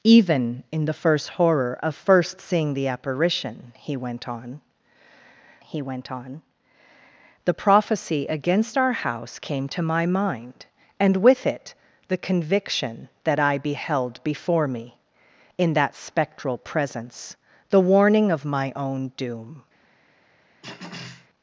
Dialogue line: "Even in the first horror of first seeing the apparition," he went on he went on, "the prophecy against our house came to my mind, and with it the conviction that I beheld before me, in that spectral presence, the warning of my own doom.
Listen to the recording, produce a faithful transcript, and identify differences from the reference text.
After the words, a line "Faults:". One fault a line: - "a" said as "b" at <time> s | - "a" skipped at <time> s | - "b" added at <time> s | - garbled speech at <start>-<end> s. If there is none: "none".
"Even in the first horror of first seeing the apparition," he went on he went on, "the prophecy against our house came to my mind, and with it the conviction that I beheld before me, in that spectral presence, the warning of my own doom.
Faults:
none